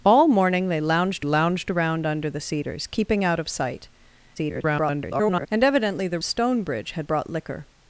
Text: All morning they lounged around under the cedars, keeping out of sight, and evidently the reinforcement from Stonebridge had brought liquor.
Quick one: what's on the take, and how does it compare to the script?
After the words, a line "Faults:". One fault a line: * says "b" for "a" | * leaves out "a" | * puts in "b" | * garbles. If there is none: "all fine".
All morning they lounged lounged around under the cedars, keeping out of sight, [garbled] and evidently the Stonebridge had brought liquor.
Faults:
* puts in "lounged"
* garbles
* leaves out "reinforcement from"